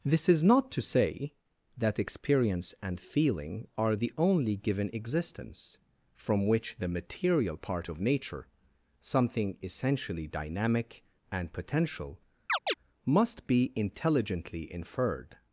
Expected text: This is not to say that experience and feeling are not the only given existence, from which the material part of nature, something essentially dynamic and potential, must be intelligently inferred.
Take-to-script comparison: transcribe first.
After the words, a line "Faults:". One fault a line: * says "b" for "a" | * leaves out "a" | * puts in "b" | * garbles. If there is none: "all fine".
This is not to say that experience and feeling are the only given existence, from which the material part of nature, something essentially dynamic and potential, must be intelligently inferred.
Faults:
* leaves out "not"